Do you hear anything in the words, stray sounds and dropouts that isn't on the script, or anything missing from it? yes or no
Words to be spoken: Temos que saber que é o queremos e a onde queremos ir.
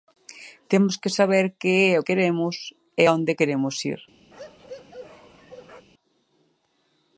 yes